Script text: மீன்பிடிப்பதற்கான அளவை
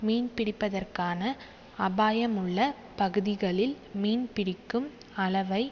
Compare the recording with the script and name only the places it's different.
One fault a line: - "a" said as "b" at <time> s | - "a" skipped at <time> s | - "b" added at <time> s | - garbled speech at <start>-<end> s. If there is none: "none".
- "அபாயமுள்ள பகுதிகளில் மீன்பிடிக்கும்" added at 1.8 s